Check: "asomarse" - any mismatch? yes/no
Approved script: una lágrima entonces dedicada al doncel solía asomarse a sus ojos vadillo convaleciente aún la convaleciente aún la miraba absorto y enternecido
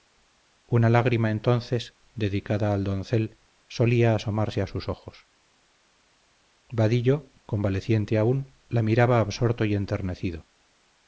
no